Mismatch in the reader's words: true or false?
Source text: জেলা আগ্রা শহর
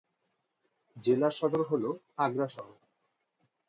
true